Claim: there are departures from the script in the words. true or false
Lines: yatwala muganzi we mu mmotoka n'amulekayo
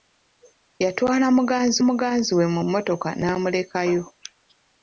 true